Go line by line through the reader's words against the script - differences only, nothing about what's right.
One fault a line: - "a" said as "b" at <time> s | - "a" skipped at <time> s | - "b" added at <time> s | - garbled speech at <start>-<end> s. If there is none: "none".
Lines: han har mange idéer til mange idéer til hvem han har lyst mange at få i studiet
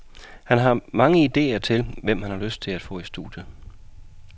- "mange idéer til" skipped at 1.9 s
- "mange" said as "til" at 2.6 s